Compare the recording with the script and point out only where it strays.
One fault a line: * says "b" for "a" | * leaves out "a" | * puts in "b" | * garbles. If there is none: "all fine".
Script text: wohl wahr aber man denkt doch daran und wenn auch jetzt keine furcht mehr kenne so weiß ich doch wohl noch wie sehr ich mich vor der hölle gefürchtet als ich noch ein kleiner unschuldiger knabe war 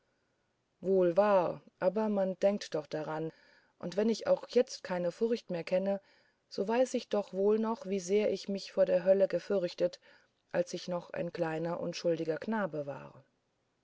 * puts in "ich"